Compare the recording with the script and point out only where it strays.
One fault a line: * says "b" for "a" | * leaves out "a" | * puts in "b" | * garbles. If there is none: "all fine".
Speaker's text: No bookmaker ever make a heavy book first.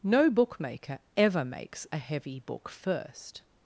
* says "makes" for "make"